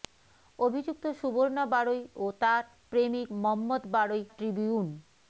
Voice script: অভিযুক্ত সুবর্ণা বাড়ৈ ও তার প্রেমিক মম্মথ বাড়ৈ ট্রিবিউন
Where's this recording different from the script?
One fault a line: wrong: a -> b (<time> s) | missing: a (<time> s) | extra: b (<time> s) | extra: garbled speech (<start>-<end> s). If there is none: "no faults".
no faults